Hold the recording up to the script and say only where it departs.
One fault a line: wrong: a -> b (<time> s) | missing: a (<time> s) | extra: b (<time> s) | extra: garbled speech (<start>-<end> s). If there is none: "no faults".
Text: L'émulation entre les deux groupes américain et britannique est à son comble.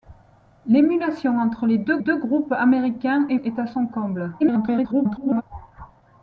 extra: deux (2.0 s)
missing: britannique (3.4 s)
extra: garbled speech (4.4-5.4 s)